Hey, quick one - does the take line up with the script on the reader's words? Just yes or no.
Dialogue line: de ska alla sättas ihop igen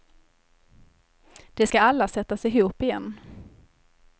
yes